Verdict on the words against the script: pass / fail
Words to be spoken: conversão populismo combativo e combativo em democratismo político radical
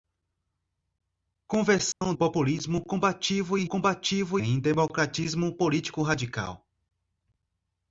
pass